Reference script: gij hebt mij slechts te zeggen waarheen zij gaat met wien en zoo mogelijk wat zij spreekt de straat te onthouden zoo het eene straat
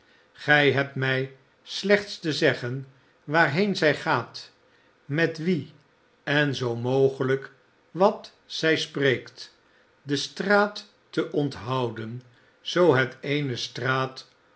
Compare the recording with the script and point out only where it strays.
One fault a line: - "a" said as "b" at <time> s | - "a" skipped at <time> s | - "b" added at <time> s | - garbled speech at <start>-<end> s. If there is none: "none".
none